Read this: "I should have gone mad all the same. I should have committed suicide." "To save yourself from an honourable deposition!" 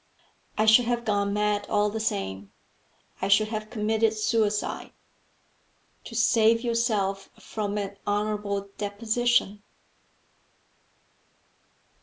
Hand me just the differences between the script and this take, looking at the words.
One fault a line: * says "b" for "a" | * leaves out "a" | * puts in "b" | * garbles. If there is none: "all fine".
all fine